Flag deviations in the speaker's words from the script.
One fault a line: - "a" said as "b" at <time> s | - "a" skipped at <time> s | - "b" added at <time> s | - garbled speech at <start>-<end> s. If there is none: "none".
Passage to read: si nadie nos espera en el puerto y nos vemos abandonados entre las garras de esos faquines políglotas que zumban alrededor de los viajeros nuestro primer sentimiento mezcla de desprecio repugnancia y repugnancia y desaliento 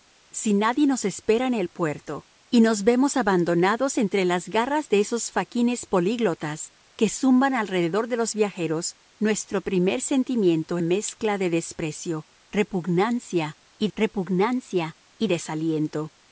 none